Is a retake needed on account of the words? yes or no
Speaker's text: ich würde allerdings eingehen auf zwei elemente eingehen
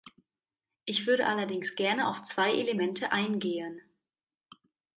yes